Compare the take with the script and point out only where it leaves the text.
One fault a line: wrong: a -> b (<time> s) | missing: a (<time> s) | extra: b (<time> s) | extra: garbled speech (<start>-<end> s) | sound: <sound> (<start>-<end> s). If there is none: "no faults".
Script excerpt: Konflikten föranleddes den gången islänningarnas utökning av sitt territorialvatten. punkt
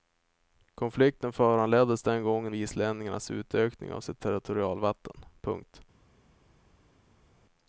no faults